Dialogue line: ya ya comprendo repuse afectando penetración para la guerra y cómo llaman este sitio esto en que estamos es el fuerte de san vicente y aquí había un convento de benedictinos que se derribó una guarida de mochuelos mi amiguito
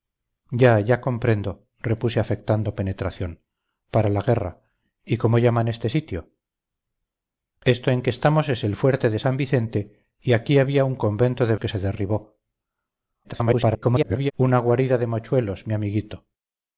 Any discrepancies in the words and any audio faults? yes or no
yes